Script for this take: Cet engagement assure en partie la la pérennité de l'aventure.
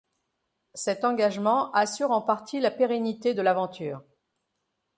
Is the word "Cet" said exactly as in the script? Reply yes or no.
yes